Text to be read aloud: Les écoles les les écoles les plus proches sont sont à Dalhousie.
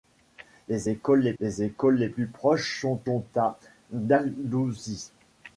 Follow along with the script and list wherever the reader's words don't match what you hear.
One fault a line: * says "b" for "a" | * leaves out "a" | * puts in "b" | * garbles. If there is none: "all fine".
all fine